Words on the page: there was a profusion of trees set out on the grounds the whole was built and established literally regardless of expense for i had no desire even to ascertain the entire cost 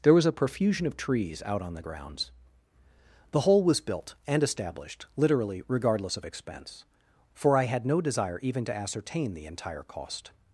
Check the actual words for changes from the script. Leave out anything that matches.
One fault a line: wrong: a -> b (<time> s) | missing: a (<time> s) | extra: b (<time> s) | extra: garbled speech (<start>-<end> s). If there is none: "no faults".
missing: set (1.4 s)